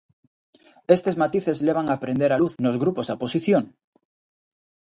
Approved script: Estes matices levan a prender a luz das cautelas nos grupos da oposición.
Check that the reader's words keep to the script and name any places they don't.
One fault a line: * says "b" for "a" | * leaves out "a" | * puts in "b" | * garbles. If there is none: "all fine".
* leaves out "das cautelas"